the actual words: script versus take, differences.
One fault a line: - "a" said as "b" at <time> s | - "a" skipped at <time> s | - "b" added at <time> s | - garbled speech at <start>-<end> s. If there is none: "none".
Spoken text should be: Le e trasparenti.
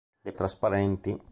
none